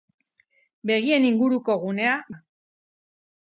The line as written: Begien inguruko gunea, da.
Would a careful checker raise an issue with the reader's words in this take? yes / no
no